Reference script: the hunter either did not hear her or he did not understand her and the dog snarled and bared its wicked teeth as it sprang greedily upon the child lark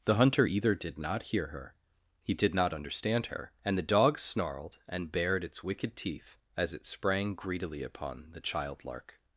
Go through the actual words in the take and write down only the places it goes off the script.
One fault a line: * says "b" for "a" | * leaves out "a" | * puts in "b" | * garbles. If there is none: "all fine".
* leaves out "or"